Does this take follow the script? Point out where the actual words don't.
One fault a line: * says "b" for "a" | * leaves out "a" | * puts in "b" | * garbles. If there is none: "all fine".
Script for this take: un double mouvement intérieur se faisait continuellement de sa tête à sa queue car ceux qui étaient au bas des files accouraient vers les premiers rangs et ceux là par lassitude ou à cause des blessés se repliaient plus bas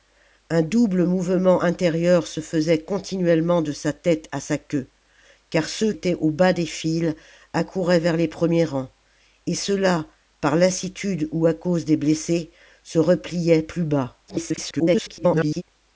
* leaves out "qui"
* garbles